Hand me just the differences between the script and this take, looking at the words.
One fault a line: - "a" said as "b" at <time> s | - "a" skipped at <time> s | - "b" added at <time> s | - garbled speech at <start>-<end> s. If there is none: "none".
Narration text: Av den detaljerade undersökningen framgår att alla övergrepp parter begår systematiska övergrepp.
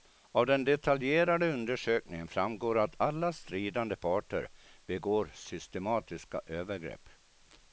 - "övergrepp" said as "stridande" at 3.3 s